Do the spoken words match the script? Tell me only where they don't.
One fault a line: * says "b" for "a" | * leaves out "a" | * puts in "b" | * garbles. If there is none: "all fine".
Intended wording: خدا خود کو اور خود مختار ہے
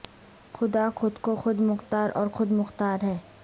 * puts in "خود مختار"